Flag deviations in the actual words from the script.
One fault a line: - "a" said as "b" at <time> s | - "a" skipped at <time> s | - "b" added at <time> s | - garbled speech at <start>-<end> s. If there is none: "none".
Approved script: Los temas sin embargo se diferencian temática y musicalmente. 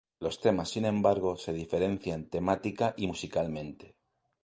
none